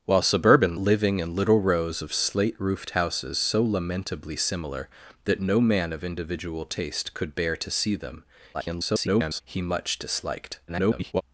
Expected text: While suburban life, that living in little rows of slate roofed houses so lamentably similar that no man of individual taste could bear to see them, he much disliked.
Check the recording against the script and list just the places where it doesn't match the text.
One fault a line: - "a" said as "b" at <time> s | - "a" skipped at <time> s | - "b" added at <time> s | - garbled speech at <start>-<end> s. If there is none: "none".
- "life that" skipped at 0.8 s
- garbled speech at 8.5-9.4 s
- garbled speech at 10.7-11.2 s